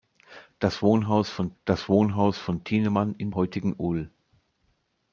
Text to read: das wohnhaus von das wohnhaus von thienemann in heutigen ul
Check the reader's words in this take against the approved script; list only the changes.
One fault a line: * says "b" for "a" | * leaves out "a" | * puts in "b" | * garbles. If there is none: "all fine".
all fine